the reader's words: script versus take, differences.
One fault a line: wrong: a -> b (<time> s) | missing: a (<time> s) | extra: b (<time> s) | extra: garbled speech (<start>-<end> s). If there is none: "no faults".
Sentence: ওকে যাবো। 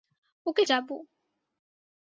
no faults